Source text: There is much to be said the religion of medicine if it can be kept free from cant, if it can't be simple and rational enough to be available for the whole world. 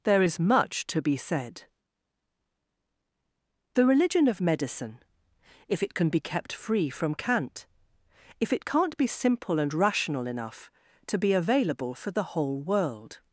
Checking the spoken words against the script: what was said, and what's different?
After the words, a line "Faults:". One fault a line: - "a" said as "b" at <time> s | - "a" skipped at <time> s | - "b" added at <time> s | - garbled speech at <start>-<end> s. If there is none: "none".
There is much to be said the religion of medicine if it can be kept free from cant, if it can't be simple and rational enough to be available for the whole world.
Faults:
none